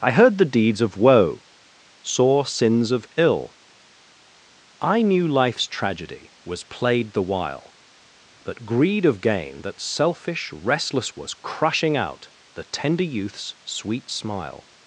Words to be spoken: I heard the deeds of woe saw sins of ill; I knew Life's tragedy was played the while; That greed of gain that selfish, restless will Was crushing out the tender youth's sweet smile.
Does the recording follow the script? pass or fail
fail